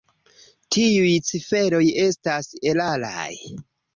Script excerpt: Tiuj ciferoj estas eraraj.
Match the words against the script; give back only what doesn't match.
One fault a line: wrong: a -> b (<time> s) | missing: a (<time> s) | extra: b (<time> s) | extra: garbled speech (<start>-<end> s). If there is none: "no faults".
no faults